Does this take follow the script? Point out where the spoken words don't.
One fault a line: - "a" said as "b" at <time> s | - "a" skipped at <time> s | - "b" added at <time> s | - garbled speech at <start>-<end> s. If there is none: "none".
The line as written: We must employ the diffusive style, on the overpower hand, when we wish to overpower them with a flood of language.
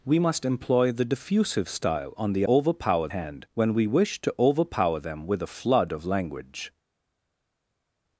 none